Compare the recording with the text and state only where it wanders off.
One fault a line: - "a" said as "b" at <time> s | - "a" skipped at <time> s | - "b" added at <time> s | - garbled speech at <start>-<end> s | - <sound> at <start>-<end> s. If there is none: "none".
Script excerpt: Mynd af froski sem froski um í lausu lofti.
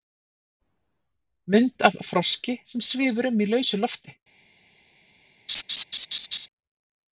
- "froski" said as "svífur" at 2.9 s
- laugh at 5.5-6.5 s